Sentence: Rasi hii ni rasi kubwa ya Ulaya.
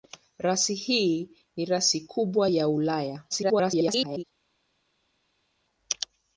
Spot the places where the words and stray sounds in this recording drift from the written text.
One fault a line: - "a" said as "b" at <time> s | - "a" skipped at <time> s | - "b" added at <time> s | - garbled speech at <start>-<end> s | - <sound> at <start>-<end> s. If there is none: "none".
- garbled speech at 3.3-4.2 s